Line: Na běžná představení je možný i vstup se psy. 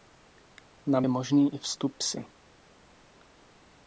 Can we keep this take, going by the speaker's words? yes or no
no